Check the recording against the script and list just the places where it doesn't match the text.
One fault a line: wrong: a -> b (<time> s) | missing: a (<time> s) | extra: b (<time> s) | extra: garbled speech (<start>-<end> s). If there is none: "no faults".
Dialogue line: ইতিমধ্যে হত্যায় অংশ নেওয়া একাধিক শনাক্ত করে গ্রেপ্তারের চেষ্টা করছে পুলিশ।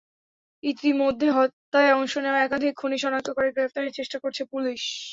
extra: খুনি (2.8 s)